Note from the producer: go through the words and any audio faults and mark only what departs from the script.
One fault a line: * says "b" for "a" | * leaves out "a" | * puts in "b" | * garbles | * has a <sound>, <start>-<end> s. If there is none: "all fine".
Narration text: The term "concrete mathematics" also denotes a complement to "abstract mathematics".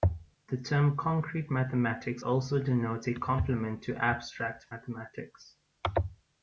all fine